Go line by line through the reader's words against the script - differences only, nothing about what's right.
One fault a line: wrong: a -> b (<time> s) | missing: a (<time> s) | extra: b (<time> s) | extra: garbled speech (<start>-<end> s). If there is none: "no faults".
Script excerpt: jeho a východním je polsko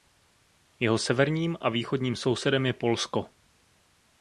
extra: severním (1.0 s)
extra: sousedem (2.1 s)